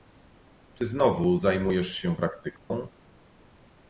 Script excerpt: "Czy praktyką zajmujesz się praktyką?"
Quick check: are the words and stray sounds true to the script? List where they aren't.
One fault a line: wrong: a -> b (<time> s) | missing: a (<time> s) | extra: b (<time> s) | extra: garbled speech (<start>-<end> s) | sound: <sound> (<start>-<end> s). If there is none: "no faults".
wrong: praktyką -> znowu (0.8 s)
sound: dropout (2.6-2.7 s)